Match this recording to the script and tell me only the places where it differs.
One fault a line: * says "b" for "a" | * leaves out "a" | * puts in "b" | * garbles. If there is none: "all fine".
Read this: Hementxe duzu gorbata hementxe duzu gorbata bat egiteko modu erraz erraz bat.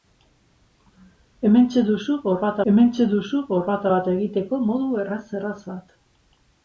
all fine